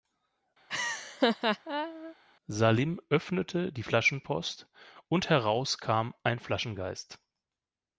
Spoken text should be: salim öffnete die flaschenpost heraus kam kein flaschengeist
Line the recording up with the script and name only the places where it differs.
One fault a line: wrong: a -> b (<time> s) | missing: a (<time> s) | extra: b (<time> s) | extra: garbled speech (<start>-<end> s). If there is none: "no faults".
extra: und (5.1 s)
wrong: kein -> ein (6.2 s)